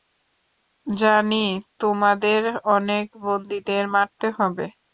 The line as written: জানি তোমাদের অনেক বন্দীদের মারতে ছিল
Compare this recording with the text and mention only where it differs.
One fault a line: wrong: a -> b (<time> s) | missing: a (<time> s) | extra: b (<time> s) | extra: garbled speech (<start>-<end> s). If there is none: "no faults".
wrong: ছিল -> হবে (4.4 s)